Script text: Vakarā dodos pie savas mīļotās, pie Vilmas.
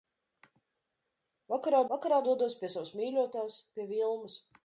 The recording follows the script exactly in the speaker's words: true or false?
false